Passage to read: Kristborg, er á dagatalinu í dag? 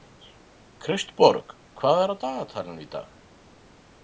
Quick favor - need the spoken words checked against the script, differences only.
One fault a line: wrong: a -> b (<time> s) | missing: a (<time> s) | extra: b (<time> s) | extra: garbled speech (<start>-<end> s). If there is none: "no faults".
extra: hvað (1.8 s)